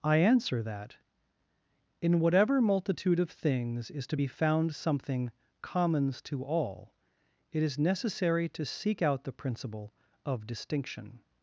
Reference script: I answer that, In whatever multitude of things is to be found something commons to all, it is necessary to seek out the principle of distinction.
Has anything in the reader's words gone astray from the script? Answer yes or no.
no